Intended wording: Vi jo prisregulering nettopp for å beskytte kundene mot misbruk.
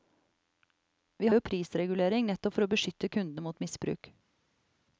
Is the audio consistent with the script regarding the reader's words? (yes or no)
yes